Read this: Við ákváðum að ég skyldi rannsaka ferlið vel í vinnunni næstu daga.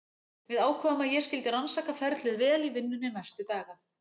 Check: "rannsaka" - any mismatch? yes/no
no